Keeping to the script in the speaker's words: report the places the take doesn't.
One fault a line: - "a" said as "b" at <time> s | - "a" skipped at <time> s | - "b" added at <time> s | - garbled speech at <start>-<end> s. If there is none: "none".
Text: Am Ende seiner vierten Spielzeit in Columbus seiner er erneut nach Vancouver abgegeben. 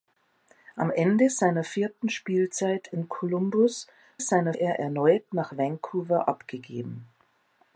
none